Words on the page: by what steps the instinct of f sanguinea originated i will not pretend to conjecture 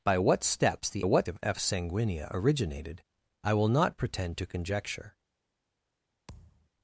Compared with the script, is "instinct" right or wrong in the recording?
wrong